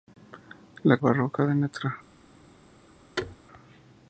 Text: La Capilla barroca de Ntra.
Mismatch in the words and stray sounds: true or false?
true